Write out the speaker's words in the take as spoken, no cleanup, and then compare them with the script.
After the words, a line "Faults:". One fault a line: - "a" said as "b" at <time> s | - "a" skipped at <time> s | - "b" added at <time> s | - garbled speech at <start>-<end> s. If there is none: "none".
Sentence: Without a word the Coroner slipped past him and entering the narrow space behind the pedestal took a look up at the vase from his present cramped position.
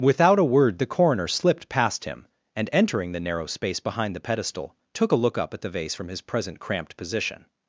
Without a word the Coroner slipped past him and entering the narrow space behind the pedestal took a look up at the vase from his present cramped position.
Faults:
none